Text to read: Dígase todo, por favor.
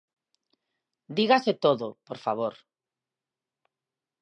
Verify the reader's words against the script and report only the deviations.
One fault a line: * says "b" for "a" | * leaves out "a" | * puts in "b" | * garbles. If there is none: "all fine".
all fine